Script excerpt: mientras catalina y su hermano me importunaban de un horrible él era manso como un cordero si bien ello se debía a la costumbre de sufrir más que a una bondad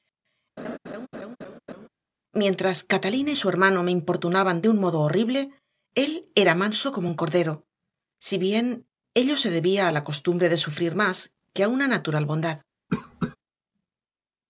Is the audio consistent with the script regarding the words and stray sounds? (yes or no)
no